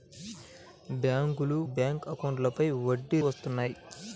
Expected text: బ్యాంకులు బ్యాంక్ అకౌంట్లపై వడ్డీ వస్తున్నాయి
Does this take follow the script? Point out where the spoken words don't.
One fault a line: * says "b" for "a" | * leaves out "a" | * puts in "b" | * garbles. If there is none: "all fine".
all fine